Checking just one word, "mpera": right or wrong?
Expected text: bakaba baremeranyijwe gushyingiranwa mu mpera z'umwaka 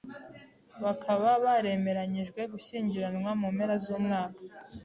right